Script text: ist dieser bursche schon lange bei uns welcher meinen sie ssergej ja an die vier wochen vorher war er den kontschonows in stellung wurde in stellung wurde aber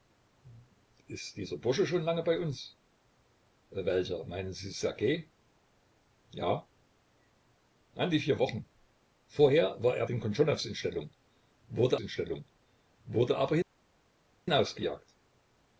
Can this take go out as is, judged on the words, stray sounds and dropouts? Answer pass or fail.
pass